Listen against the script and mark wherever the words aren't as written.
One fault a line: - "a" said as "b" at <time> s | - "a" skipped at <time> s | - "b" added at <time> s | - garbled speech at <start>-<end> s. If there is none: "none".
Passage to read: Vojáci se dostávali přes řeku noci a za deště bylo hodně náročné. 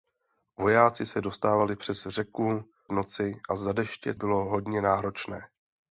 none